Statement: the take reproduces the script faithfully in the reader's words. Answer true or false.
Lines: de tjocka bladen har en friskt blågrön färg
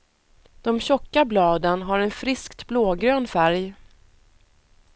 true